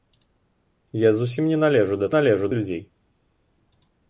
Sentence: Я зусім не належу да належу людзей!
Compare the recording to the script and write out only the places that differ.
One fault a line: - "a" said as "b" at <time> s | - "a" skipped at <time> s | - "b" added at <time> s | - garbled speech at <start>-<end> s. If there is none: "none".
none